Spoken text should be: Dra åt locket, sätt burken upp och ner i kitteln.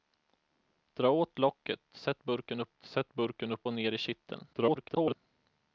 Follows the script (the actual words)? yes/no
no